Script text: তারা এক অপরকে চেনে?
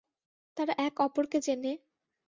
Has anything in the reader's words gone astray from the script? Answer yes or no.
no